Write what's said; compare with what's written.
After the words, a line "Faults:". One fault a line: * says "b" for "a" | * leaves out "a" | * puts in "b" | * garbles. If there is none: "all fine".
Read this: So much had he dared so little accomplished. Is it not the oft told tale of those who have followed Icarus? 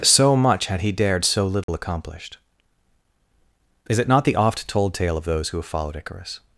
So much had he dared so little accomplished. Is it not the oft told tale of those who have followed Icarus?
Faults:
all fine